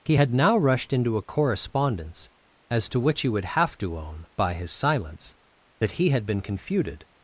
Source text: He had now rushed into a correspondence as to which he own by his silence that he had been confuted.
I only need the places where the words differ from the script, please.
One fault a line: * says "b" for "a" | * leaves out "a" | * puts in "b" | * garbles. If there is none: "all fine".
* puts in "would have to"